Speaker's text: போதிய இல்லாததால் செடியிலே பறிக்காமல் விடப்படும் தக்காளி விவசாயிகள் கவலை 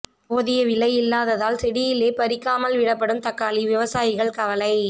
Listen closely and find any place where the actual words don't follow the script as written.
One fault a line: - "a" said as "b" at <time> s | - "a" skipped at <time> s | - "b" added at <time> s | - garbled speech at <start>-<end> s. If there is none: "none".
- "விலை" added at 0.7 s